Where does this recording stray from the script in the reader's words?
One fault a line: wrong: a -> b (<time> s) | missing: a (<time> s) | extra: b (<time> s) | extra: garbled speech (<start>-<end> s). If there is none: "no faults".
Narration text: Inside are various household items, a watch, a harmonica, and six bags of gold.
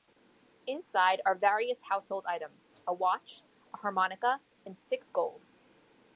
missing: bags of (5.1 s)